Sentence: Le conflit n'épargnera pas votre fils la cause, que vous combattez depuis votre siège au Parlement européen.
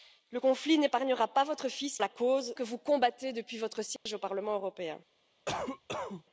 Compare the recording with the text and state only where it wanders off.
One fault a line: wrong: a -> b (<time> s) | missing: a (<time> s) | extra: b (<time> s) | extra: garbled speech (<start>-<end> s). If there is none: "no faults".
no faults